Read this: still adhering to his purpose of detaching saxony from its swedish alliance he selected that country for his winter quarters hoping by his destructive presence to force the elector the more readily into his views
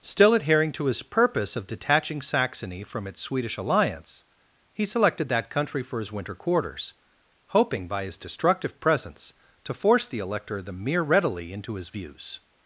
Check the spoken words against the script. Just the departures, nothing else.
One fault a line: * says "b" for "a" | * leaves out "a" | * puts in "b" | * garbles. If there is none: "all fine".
* says "mere" for "more"